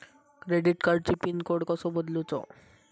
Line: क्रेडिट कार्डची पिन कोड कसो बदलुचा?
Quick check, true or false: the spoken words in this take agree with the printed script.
true